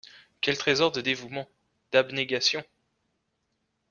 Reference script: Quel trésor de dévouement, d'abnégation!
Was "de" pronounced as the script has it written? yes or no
yes